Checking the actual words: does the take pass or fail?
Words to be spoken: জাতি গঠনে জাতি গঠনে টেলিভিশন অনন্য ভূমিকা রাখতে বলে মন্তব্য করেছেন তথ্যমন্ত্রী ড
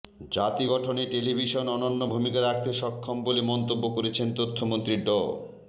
fail